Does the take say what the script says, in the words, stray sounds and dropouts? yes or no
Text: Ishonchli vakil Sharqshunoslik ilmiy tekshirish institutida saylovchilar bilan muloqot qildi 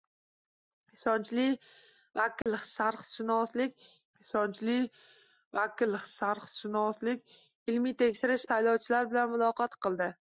no